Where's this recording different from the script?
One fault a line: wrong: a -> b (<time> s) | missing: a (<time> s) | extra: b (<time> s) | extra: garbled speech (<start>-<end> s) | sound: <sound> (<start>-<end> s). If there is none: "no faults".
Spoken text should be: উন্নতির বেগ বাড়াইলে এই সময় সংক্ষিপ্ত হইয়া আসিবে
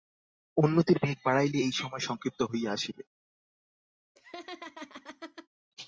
sound: laugh (4.1-5.5 s)